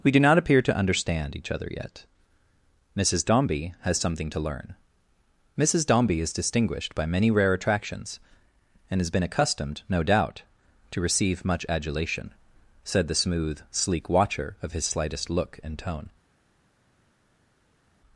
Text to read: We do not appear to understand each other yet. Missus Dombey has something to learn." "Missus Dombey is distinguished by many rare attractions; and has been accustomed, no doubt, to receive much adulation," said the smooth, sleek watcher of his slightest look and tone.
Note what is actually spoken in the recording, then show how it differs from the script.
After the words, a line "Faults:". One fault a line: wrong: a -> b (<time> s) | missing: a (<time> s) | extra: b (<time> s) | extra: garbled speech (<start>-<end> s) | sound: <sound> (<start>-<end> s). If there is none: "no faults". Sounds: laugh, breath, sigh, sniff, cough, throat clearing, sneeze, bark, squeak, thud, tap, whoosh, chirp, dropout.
We do not appear to understand each other yet. Missus Dombey has something to learn." "Missus Dombey is distinguished by many rare attractions; and has been accustomed, no doubt, to receive much adulation," said the smooth, sleek watcher of his slightest look and tone.
Faults:
no faults